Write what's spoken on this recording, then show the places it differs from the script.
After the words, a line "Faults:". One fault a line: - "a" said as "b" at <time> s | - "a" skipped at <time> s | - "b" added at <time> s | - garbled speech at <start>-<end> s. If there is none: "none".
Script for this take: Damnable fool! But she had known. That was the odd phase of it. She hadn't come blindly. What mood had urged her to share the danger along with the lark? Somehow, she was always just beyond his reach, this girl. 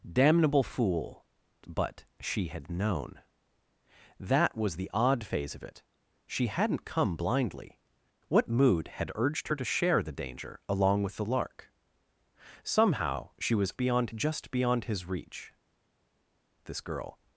Damnable fool! But she had known. That was the odd phase of it. She hadn't come blindly. What mood had urged her to share the danger along with the lark? Somehow, she was beyond just beyond his reach, this girl.
Faults:
- "always" said as "beyond" at 13.8 s